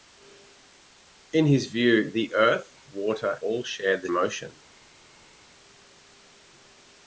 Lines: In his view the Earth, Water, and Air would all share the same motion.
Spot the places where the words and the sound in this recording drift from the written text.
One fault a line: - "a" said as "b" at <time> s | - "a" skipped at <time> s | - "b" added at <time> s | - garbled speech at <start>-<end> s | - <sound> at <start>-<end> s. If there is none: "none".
- "and Air would" skipped at 3.4 s
- "same" skipped at 4.1 s